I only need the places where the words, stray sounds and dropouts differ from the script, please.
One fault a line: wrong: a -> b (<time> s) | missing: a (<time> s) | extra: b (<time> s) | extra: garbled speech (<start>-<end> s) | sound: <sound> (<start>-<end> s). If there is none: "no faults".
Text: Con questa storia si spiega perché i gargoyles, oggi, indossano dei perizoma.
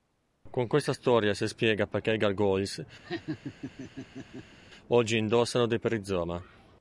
sound: laugh (3.0-4.6 s)